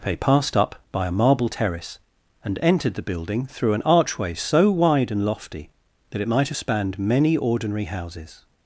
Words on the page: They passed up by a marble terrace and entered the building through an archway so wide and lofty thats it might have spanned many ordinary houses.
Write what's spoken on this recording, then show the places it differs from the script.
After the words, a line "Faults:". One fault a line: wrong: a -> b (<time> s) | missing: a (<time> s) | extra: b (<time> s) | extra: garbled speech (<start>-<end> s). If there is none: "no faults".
They passed up by a marble terrace and entered the building through an archway so wide and lofty that it might have spanned many ordinary houses.
Faults:
wrong: thats -> that (6.1 s)